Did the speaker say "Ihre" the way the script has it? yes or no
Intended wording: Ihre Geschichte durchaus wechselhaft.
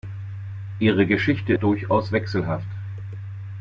yes